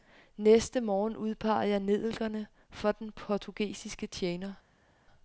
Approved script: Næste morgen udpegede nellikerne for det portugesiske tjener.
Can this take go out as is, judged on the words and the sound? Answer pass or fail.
fail